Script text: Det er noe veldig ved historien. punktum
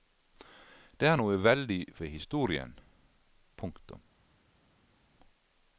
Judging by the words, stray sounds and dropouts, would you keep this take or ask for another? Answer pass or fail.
pass